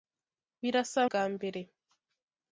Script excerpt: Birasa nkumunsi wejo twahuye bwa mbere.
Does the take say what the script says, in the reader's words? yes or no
no